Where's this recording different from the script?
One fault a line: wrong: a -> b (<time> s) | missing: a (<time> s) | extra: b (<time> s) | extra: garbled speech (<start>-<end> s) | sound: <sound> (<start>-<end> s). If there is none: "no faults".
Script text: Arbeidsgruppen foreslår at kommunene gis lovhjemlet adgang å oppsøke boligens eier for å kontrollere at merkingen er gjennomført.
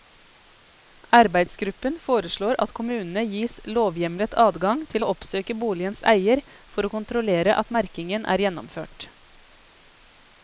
extra: til (4.9 s)